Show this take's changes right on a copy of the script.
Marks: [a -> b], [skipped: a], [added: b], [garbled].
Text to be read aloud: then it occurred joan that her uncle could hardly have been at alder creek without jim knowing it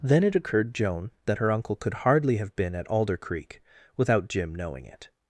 then it occurred joan that her uncle could hardly have been at alder creek without jim knowing it